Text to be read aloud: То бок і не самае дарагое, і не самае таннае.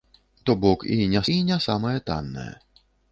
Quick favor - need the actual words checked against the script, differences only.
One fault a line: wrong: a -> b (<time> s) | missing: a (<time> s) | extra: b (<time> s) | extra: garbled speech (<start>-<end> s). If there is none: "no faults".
missing: самае дарагое (1.2 s)